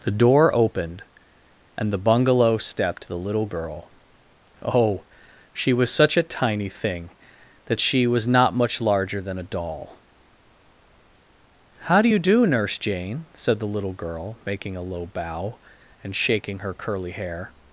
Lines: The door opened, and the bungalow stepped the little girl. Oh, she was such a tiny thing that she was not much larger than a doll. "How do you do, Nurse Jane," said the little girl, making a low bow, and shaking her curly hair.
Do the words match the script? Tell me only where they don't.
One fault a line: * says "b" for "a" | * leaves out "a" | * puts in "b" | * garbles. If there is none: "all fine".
all fine